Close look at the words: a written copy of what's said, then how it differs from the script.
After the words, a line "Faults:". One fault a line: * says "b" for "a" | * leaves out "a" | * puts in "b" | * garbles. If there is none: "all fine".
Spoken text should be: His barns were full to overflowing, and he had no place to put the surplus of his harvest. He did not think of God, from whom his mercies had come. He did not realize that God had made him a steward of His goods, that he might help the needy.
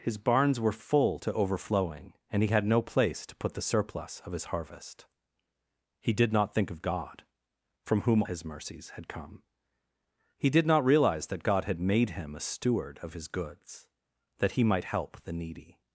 His barns were full to overflowing, and he had no place to put the surplus of his harvest. He did not think of God, from whom his mercies had come. He did not realize that God had made him a steward of His goods, that he might help the needy.
Faults:
all fine